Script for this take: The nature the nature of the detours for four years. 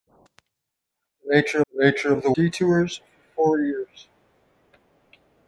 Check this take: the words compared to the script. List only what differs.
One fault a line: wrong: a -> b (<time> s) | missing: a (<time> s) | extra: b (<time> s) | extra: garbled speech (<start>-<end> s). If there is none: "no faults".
no faults